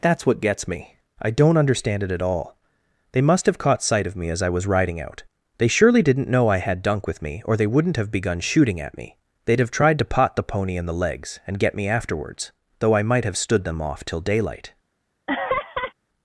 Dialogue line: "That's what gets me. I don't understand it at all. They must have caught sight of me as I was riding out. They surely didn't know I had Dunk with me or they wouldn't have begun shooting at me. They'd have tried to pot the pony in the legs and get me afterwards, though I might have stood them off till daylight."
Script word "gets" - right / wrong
right